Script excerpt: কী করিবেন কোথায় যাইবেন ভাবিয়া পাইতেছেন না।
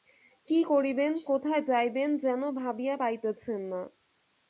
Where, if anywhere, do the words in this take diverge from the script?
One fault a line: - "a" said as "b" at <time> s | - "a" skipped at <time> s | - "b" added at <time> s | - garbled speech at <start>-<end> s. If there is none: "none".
- "যেন" added at 2.2 s